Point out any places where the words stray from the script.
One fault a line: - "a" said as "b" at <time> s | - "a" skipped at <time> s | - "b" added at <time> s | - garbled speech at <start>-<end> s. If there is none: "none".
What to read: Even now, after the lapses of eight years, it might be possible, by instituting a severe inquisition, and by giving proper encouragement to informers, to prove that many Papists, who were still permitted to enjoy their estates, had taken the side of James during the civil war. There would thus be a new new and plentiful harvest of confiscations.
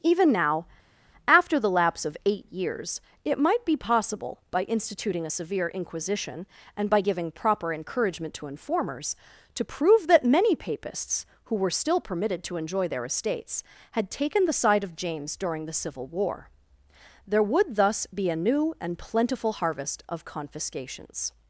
- "lapses" said as "lapse" at 1.7 s
- "new" skipped at 18.7 s